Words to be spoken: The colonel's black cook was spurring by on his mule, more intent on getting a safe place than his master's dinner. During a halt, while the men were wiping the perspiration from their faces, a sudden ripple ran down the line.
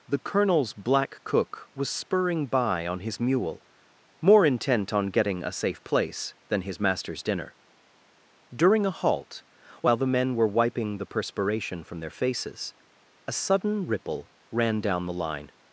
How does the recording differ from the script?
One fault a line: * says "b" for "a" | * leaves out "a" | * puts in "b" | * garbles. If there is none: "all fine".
all fine